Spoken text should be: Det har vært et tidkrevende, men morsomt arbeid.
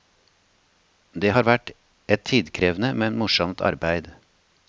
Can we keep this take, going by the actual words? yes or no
yes